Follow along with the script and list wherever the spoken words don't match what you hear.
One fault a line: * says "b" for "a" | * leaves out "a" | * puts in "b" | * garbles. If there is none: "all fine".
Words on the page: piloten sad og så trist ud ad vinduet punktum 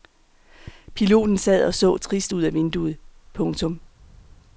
all fine